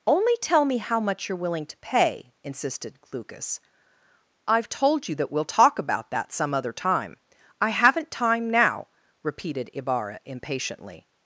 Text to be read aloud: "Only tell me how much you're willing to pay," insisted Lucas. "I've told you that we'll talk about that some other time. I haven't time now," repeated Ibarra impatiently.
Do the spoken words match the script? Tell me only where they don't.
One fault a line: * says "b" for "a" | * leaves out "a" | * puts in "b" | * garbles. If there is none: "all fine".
all fine